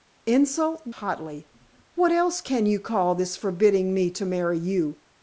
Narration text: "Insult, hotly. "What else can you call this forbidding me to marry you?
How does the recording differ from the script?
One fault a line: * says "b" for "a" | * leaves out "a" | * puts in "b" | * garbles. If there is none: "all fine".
all fine